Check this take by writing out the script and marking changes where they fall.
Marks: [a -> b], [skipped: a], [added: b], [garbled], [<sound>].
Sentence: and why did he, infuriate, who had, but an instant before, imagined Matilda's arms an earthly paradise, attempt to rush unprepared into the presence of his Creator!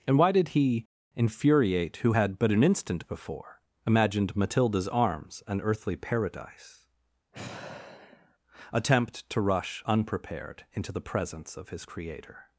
and why did he, infuriate, who had, but an instant before, imagined Matilda's arms an earthly paradise, [sigh] attempt to rush unprepared into the presence of his Creator!